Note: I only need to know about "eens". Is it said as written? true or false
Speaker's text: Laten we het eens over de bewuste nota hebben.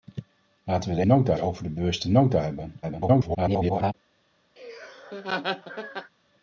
false